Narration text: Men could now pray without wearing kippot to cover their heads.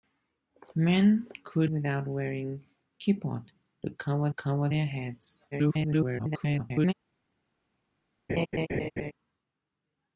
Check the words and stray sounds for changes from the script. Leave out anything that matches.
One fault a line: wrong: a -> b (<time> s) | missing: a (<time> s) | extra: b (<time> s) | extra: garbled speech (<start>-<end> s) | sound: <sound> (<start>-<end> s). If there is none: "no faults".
missing: now pray (1.7 s)
extra: cover (4.3 s)
extra: garbled speech (5.5-6.9 s)
sound: laugh (8.3-9.1 s)